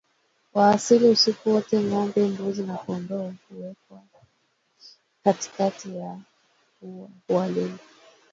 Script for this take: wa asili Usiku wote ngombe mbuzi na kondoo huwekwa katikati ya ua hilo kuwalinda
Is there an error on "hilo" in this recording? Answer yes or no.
yes